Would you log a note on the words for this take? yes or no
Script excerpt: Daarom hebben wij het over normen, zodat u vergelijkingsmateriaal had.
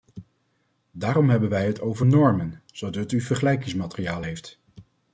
yes